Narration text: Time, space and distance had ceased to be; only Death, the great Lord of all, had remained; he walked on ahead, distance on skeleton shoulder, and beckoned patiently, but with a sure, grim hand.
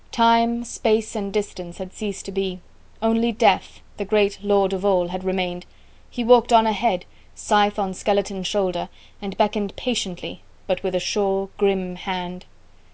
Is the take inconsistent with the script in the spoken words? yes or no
yes